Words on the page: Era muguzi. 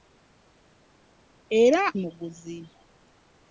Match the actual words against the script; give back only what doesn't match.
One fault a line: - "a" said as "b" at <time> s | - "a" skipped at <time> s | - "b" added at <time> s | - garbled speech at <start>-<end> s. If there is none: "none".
none